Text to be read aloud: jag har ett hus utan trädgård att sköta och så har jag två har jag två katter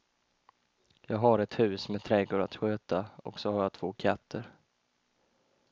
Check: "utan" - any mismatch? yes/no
yes